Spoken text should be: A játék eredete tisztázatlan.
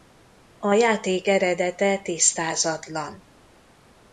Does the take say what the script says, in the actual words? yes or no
yes